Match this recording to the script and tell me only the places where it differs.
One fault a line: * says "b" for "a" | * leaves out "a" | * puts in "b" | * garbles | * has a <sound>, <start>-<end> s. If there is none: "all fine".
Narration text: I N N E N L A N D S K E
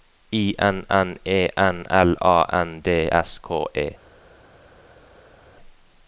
all fine